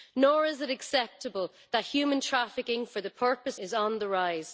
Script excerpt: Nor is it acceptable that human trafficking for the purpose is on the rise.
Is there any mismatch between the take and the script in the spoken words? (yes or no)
no